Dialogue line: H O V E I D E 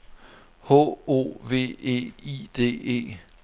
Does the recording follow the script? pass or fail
pass